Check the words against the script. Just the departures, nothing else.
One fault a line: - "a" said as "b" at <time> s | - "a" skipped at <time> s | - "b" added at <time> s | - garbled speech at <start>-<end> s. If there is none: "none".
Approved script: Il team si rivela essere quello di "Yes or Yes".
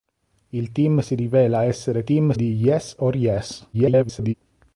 - "quello" said as "team" at 2.0 s
- garbled speech at 3.7-4.3 s